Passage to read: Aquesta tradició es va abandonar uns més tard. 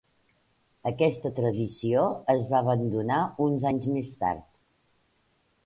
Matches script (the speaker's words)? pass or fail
fail